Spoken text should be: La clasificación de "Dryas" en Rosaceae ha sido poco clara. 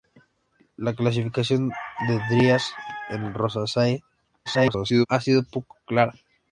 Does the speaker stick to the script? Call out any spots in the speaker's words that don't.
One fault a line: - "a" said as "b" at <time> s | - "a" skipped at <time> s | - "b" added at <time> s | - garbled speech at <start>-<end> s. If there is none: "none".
- garbled speech at 4.5-5.1 s